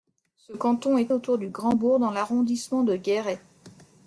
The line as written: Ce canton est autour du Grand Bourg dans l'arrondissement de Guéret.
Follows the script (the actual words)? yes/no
yes